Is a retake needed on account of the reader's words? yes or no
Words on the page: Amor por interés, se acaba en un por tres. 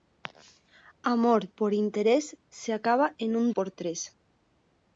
no